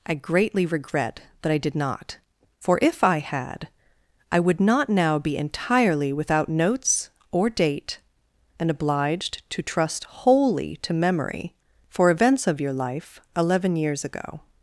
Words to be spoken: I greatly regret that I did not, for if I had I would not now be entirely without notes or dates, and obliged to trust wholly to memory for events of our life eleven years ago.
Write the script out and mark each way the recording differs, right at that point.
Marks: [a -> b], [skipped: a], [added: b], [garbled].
I greatly regret that I did not, for if I had I would not now be entirely without notes or [dates, -> date] and obliged to trust wholly to memory for events of [our -> your] life eleven years ago.